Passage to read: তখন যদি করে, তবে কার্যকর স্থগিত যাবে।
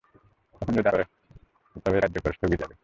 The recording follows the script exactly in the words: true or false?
true